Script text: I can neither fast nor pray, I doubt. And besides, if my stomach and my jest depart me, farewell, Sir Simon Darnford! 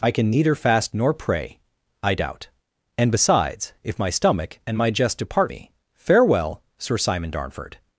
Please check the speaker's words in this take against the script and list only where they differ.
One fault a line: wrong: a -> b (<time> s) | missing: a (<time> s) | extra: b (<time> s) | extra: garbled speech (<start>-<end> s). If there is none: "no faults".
no faults